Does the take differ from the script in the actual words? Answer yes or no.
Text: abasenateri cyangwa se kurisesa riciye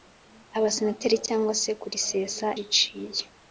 no